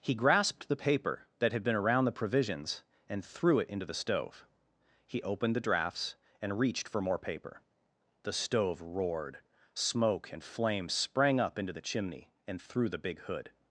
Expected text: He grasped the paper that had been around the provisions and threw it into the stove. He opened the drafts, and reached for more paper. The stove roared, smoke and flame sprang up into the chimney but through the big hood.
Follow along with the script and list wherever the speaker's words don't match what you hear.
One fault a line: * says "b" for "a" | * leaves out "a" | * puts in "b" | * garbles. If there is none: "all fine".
* says "and" for "but"